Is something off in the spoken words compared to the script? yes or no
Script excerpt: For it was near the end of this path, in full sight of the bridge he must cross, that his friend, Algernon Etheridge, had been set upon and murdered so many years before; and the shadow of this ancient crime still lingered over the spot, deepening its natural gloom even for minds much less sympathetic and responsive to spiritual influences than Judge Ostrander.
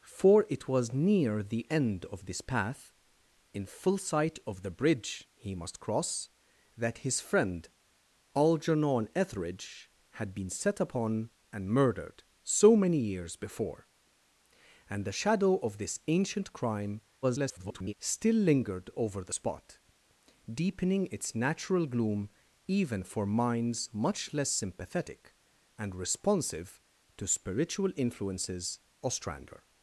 yes